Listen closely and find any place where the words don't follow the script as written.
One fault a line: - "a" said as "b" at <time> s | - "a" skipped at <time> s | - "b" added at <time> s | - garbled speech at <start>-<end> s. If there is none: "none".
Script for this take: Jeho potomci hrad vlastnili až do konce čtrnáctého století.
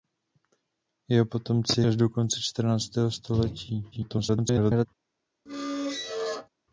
- "hrad vlastnili" skipped at 1.8 s
- garbled speech at 3.9-4.9 s